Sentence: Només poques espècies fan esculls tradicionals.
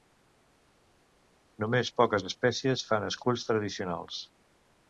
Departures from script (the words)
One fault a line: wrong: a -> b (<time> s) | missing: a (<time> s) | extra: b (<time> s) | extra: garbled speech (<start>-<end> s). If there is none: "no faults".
no faults